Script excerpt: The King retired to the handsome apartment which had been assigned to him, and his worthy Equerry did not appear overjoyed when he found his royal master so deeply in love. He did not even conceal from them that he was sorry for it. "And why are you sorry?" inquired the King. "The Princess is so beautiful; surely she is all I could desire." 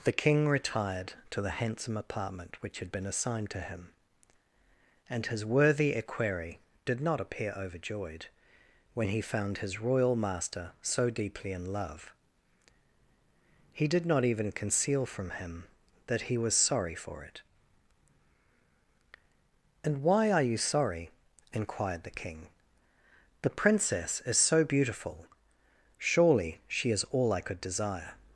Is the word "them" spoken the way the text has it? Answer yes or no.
no